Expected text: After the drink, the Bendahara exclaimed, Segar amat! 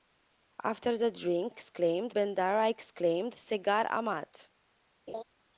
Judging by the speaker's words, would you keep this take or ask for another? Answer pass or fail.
fail